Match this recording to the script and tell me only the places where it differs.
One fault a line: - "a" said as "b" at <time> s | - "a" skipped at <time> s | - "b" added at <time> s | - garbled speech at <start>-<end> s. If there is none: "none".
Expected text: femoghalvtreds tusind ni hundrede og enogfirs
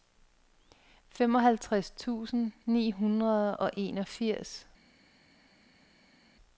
none